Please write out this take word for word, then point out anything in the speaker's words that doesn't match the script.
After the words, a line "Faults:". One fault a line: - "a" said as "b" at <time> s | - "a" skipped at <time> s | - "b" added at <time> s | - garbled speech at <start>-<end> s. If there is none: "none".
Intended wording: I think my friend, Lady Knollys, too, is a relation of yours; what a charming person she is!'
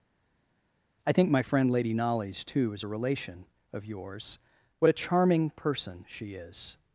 I think my friend, Lady Knollys, too, is a relation of yours; what a charming person she is!'
Faults:
none